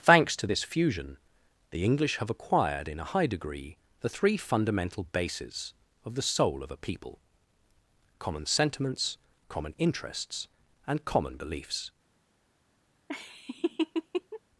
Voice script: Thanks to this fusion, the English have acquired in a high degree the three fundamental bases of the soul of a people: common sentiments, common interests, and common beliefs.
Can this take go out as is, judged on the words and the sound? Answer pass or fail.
fail